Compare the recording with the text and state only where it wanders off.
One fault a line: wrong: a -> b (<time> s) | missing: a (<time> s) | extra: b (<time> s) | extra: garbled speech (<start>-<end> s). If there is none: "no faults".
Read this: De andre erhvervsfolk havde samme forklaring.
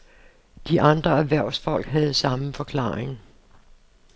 no faults